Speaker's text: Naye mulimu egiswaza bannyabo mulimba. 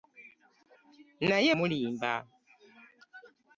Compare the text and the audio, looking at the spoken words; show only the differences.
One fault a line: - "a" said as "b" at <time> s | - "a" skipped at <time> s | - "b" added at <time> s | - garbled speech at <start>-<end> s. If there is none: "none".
- "mulimu egiswaza bannyabo" skipped at 1.5 s